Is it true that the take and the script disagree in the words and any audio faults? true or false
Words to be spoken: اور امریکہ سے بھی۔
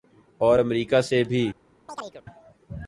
true